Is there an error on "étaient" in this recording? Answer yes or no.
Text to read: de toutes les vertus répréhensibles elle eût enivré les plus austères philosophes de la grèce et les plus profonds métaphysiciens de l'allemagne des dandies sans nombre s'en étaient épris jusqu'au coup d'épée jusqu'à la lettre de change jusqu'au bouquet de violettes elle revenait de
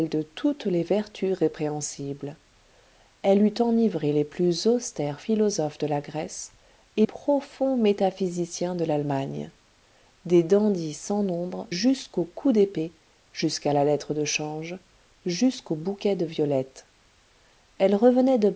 yes